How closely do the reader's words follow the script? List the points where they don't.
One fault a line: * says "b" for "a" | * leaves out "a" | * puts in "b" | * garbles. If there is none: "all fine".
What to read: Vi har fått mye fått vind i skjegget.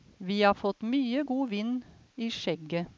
* says "god" for "fått"